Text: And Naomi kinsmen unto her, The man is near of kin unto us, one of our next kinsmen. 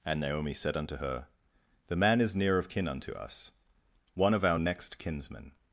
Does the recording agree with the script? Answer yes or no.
no